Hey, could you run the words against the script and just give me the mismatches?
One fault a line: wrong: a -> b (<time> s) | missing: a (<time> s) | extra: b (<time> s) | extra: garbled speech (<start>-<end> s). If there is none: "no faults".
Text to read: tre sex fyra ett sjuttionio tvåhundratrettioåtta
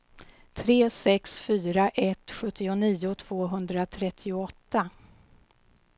no faults